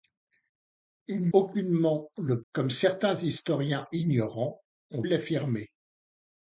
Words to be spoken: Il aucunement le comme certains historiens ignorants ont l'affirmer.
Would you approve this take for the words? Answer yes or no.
yes